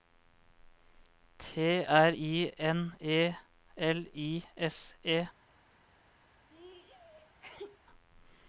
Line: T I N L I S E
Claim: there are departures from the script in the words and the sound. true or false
true